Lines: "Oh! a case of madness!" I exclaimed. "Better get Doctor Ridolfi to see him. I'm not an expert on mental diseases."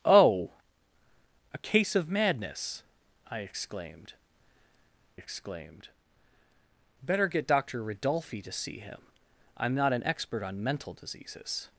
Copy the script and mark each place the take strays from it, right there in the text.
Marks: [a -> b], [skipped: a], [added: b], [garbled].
"Oh! a case of madness!" I exclaimed. [added: exclaimed] "Better get Doctor Ridolfi to see him. I'm not an expert on mental diseases."